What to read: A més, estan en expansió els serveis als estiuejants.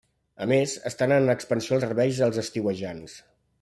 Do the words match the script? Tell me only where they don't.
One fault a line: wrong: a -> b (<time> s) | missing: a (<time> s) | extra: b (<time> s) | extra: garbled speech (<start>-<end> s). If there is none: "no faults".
missing: els (1.8 s)